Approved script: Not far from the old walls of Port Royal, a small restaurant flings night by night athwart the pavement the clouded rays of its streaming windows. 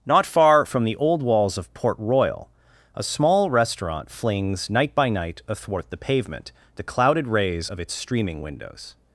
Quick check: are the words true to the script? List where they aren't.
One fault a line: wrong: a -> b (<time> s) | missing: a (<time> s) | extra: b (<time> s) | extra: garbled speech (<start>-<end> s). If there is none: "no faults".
no faults